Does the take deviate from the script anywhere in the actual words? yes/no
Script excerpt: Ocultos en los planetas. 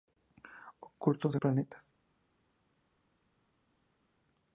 yes